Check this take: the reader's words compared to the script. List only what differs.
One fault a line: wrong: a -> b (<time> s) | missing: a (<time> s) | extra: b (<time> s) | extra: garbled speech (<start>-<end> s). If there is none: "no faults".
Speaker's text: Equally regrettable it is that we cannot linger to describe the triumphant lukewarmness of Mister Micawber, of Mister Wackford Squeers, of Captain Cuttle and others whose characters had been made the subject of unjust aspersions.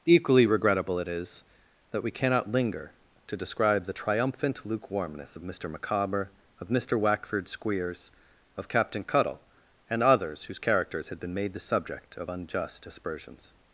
no faults